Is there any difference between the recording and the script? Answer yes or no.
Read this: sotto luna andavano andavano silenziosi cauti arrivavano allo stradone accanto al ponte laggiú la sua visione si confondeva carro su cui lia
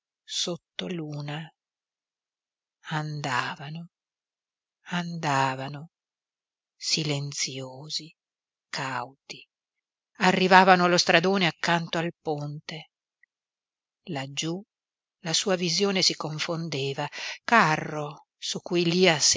no